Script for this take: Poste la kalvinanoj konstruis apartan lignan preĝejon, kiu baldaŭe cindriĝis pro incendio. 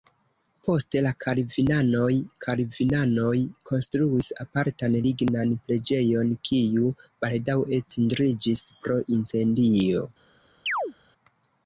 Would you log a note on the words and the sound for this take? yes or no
yes